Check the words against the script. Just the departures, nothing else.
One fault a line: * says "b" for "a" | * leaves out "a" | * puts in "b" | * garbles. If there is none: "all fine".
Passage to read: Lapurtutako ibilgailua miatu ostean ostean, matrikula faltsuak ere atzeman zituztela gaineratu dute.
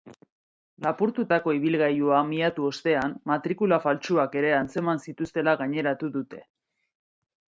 * leaves out "ostean"